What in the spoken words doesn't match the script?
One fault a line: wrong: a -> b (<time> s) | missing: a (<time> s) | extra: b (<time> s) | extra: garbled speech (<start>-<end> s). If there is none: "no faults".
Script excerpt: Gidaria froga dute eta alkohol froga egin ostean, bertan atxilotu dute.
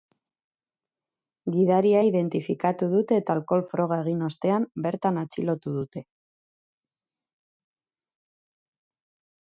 wrong: froga -> identifikatu (2.1 s)